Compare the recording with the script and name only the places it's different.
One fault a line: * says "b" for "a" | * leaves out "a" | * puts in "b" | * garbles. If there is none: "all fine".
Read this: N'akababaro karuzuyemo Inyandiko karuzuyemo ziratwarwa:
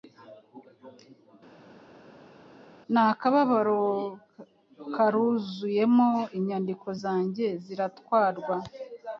* says "zanjye" for "karuzuyemo"